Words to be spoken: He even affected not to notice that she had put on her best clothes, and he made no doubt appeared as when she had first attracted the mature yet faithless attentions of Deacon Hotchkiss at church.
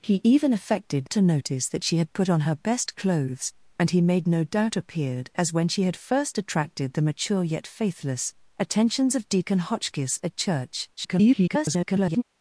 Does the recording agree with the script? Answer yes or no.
no